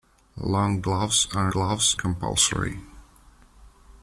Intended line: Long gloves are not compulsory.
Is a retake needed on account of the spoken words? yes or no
yes